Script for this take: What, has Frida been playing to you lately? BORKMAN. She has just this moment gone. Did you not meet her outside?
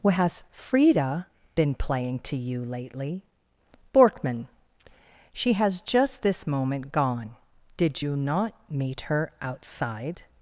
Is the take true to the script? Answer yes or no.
yes